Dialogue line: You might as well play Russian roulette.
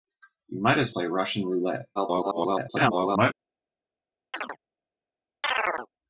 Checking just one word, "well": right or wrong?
wrong